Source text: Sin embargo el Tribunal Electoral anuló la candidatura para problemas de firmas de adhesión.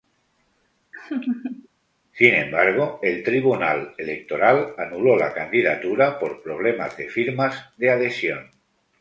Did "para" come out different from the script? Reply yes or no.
yes